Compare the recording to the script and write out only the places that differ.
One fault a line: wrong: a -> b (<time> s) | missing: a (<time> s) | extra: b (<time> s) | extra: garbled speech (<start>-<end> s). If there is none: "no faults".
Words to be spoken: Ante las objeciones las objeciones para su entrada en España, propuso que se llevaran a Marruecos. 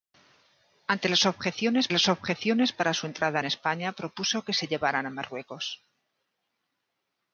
no faults